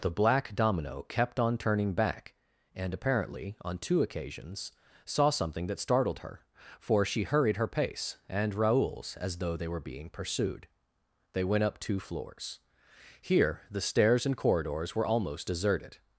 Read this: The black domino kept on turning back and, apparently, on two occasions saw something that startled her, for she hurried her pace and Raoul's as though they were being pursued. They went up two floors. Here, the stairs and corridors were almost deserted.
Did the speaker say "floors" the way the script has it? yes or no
yes